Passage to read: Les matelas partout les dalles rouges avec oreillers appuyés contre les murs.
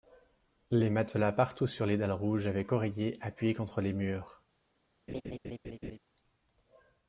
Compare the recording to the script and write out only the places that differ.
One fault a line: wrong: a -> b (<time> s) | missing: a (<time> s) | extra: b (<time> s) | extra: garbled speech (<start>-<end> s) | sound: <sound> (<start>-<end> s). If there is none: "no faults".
extra: sur (1.7 s)
sound: laugh (5.1-6.0 s)